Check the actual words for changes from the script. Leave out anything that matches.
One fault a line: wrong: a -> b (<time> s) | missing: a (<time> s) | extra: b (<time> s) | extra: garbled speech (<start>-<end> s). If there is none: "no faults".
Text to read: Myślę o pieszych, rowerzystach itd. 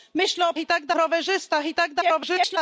wrong: pieszych -> itd (0.6 s)
extra: garbled speech (2.0-2.6 s)